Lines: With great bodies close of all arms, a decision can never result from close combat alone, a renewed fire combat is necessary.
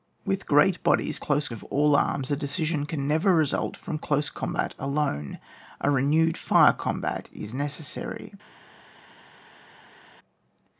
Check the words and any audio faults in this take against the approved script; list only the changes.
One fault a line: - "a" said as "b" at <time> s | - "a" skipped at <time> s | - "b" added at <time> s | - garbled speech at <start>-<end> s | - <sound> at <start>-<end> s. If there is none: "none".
none